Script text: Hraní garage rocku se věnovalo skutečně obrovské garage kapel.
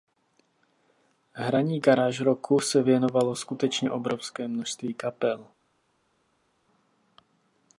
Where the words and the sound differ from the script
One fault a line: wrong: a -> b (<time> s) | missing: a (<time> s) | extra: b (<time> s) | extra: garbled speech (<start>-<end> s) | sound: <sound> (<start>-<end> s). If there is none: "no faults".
wrong: garage -> množství (4.5 s)